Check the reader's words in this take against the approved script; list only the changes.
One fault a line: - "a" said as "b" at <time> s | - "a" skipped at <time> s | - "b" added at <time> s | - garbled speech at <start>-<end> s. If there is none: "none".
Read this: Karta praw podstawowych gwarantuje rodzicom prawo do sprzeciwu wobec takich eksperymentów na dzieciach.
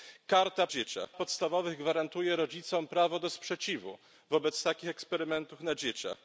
- "praw" said as "dzieciach" at 0.7 s